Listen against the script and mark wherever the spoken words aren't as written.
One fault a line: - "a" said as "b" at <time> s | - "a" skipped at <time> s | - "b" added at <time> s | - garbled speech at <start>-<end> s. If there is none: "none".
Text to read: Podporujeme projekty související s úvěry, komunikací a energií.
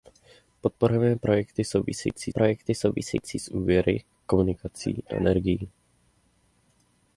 - "projekty související" added at 2.3 s